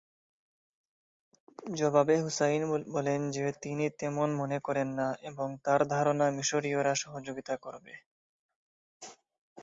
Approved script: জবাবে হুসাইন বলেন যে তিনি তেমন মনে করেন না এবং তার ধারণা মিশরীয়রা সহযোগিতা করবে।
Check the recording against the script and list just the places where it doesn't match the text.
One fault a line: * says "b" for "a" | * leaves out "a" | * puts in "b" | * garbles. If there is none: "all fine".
all fine